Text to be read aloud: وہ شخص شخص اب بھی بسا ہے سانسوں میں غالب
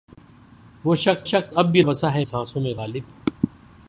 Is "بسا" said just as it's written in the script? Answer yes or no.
yes